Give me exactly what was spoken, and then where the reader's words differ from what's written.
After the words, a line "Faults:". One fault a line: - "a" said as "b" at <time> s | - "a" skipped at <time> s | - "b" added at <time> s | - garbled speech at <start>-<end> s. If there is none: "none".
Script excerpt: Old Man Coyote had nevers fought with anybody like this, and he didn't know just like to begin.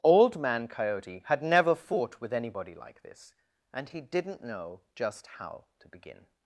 Old Man Coyote had never fought with anybody like this, and he didn't know just how to begin.
Faults:
- "nevers" said as "never" at 1.4 s
- "like" said as "how" at 5.4 s